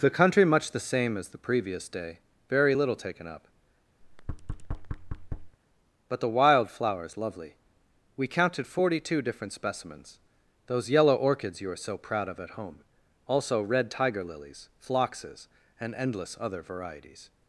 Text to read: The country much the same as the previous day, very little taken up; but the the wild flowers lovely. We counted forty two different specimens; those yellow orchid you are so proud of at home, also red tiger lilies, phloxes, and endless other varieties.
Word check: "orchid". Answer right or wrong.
wrong